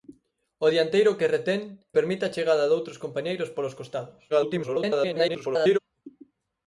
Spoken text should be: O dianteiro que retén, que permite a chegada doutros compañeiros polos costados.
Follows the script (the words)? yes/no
no